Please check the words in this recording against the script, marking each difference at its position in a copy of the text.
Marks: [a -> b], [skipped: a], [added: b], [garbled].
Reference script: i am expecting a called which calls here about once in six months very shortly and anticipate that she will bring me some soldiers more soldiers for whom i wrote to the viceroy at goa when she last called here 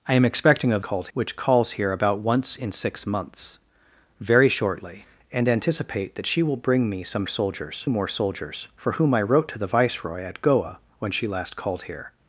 i am expecting a called which calls here about once in six months very shortly and anticipate that she will bring me some soldiers more soldiers for whom i wrote to the viceroy at goa when she last called here